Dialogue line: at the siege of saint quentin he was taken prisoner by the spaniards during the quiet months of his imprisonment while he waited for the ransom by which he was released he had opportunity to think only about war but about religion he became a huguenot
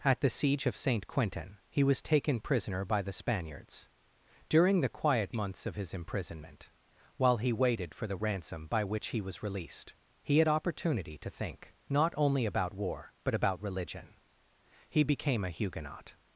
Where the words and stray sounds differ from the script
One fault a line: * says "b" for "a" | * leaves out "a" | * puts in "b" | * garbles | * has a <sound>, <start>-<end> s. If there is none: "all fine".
* puts in "not"